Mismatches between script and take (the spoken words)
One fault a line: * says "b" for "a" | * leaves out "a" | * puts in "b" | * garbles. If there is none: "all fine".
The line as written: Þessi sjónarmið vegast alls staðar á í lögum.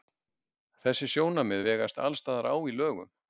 all fine